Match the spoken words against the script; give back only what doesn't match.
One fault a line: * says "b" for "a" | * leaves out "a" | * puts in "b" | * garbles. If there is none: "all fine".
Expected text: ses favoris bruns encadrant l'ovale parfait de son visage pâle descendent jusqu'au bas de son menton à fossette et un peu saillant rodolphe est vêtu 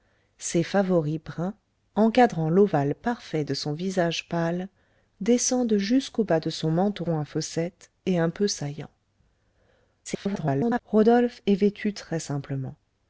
* garbles